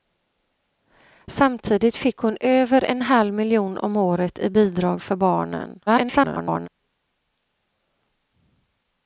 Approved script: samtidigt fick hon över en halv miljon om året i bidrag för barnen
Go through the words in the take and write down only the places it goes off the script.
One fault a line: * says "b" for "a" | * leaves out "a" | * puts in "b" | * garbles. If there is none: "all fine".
* garbles